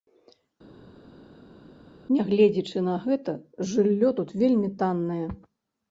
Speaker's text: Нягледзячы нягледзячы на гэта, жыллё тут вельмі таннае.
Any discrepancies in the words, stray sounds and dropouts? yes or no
yes